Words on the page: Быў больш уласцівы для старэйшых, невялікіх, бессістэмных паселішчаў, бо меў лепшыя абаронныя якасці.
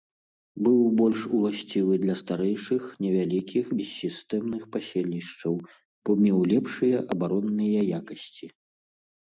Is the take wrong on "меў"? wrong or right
right